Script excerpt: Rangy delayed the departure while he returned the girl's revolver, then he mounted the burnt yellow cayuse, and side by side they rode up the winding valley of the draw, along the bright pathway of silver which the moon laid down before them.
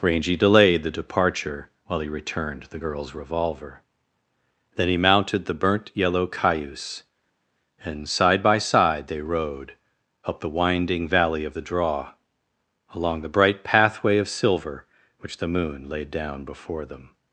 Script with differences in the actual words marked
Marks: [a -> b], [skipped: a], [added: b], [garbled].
Rangy delayed the departure while he returned the girl's revolver, then he mounted the burnt yellow cayuse, and side by side they rode up the winding valley of the draw, along the bright pathway of silver which the moon laid down before them.